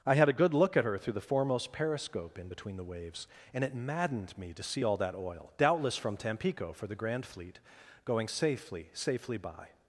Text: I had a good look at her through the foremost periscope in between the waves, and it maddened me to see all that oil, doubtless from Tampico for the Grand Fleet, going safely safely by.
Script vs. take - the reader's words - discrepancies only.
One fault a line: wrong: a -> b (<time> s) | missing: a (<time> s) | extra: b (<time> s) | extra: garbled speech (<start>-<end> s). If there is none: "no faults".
no faults